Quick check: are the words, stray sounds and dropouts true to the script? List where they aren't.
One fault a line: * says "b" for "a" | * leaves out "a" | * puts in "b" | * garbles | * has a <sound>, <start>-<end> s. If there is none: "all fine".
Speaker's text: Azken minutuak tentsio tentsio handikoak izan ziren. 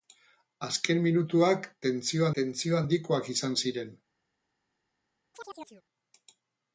* has a chirp, 5.3-5.8 s